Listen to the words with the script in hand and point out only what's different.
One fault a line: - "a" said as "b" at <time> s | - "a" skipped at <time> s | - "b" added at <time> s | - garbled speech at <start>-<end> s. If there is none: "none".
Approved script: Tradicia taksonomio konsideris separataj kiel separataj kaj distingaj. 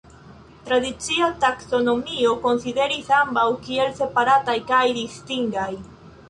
- "separataj" said as "ambaŭ" at 3.2 s